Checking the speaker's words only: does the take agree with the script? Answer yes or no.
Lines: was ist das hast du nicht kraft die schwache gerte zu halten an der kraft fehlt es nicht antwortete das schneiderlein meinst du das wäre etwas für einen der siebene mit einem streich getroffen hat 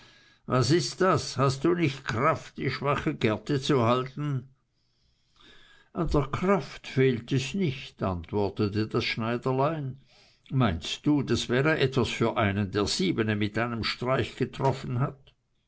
yes